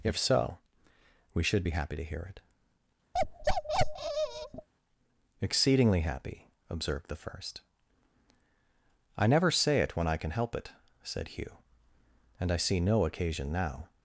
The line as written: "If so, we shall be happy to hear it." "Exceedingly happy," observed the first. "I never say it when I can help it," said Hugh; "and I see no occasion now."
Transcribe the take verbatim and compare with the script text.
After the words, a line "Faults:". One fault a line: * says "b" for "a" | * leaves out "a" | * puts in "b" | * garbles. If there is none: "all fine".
"If so, we should be happy to hear it." "Exceedingly happy," observed the first. "I never say it when I can help it," said Hugh; "and I see no occasion now."
Faults:
* says "should" for "shall"